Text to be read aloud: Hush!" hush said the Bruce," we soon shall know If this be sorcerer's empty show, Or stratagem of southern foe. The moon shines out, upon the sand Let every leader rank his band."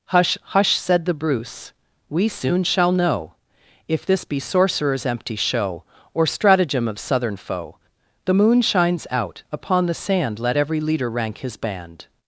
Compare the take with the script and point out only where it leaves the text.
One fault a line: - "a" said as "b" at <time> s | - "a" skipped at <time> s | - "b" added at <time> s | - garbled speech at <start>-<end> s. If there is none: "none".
none